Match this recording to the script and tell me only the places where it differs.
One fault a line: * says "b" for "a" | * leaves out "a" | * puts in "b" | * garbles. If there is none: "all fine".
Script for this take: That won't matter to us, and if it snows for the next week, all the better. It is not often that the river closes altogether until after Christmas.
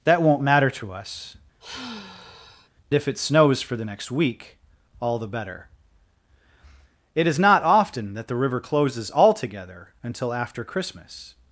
* leaves out "and"